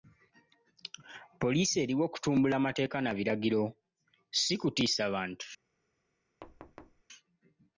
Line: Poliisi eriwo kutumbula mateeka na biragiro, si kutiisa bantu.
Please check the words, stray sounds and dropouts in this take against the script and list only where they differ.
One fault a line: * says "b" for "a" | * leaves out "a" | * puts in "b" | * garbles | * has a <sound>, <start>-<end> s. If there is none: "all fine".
* has a thud, 6.4-7.0 s